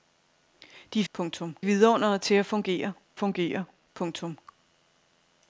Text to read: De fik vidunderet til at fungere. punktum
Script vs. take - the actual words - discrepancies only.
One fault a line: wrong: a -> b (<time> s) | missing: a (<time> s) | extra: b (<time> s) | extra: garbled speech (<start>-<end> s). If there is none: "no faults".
wrong: fik -> punktum (1.1 s)
extra: fungere (3.1 s)